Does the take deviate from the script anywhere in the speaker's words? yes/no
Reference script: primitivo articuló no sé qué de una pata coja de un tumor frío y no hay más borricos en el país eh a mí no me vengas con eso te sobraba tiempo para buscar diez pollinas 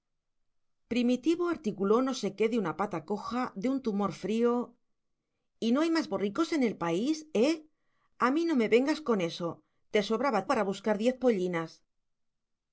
yes